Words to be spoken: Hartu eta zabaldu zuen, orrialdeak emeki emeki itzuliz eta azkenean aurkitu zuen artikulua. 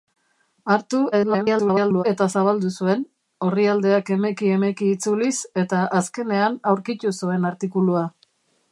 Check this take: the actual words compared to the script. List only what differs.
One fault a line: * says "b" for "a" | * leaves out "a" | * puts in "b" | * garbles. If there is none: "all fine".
* garbles